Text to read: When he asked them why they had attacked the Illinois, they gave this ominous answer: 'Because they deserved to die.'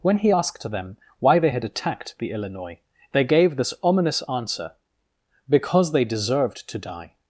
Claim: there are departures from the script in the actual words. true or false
false